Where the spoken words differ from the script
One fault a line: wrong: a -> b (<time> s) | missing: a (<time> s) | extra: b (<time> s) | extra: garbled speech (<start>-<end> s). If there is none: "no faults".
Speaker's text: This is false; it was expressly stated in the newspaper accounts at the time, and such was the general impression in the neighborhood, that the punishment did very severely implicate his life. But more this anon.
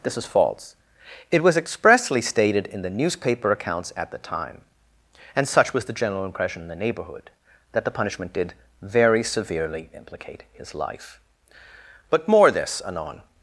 no faults